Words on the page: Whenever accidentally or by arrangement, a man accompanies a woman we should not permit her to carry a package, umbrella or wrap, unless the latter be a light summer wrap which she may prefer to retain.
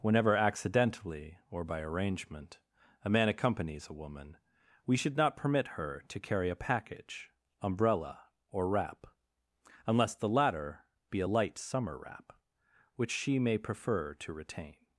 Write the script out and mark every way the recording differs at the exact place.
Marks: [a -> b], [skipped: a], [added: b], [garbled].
Whenever accidentally or by arrangement, a man accompanies a woman we should not permit her to carry a package, umbrella or wrap, unless the latter be a light summer wrap which she may prefer to retain.